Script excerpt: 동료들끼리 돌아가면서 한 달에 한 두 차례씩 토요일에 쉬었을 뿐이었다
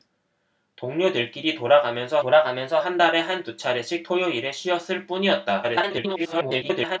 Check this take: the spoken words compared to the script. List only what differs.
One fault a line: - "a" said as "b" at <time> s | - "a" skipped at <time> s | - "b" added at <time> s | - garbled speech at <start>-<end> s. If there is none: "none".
- "돌아가면서" added at 2.2 s
- garbled speech at 5.6-7.0 s